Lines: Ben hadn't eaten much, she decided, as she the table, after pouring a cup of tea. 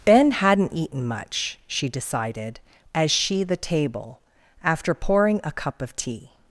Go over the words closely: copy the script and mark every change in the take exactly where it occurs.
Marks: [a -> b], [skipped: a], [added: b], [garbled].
Ben hadn't eaten much, she decided, as she the table, after pouring a cup of tea.